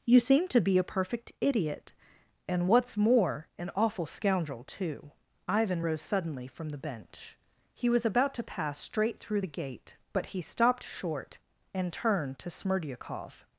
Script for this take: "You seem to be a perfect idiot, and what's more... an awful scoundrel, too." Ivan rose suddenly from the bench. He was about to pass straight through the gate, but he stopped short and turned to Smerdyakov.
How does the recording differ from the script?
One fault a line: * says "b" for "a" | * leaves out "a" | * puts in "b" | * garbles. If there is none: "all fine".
all fine